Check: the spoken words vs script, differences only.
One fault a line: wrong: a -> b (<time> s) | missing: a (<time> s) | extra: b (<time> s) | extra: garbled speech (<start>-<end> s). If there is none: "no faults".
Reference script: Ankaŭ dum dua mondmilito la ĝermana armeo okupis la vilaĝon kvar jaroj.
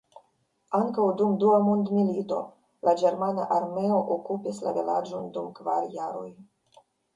extra: dum (5.4 s)